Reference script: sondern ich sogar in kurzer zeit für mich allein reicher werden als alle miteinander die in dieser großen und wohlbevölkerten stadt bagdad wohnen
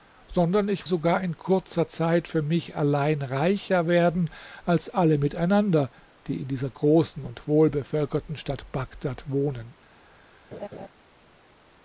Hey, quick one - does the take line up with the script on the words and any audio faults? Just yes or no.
no